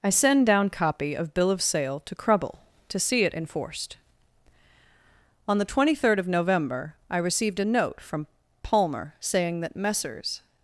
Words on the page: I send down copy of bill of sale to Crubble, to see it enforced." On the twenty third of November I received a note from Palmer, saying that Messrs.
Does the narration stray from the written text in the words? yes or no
no